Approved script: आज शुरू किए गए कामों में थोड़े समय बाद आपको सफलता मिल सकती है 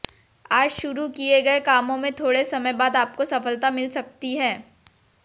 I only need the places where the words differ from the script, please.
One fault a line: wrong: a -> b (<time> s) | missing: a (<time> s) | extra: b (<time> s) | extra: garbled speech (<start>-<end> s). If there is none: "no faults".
no faults